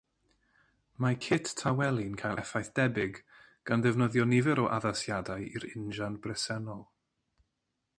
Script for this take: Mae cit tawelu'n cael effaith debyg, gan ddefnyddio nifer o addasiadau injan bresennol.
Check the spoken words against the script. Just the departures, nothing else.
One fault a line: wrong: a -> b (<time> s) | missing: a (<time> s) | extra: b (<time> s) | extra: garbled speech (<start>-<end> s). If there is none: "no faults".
extra: i'r (5.6 s)